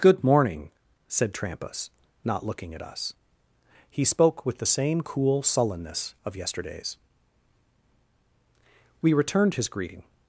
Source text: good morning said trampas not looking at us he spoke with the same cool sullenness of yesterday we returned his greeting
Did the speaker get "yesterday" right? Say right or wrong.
wrong